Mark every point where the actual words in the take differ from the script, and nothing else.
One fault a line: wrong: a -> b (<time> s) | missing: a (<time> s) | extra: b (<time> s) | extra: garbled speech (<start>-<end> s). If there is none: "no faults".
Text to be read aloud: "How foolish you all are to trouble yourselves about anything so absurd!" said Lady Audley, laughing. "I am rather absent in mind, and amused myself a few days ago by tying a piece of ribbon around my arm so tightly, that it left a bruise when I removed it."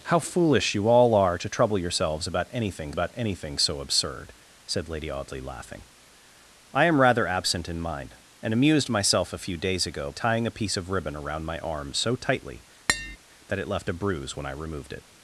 extra: about anything (2.9 s)
missing: by (10.1 s)